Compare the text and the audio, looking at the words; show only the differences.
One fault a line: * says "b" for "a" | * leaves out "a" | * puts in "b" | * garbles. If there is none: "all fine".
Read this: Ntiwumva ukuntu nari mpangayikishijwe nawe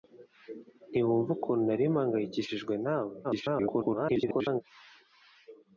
* garbles